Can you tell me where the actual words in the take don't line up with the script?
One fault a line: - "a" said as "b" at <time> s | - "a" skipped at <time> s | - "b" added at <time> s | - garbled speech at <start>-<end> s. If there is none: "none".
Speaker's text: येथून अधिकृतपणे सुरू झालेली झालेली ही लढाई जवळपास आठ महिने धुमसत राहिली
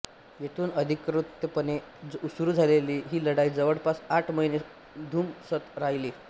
- "झालेली" skipped at 3.0 s